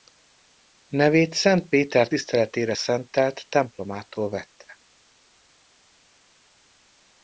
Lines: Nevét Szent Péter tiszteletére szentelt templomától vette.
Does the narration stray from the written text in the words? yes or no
no